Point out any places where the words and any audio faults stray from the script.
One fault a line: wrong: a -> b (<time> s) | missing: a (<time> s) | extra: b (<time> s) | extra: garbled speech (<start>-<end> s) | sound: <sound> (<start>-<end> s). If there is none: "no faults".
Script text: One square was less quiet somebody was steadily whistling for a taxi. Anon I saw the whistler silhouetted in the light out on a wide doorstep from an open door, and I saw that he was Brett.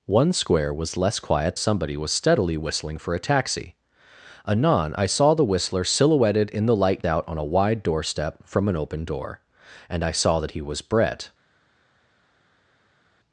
no faults